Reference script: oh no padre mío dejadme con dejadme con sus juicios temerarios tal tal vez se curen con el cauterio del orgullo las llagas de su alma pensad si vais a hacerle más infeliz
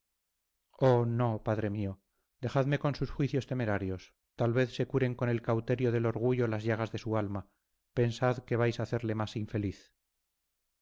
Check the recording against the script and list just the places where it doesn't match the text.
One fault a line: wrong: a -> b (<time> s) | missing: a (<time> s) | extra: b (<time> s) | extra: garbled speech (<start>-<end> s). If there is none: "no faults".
missing: dejadme con (3.0 s)
missing: tal (4.5 s)
wrong: si -> que (8.4 s)